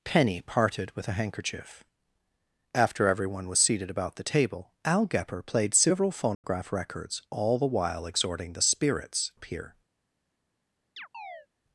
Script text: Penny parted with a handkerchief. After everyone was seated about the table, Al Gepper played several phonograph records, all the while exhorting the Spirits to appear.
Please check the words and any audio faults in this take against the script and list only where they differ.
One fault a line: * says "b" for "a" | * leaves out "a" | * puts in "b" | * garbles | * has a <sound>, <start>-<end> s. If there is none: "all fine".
* has a dropout, 6.3-6.4 s
* leaves out "to"
* has a chirp, 11.0-11.5 s